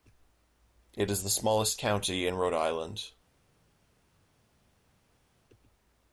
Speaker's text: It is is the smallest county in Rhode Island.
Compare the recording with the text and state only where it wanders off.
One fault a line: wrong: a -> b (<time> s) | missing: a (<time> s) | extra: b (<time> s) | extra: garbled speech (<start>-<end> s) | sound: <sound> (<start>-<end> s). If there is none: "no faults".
missing: is (1.2 s)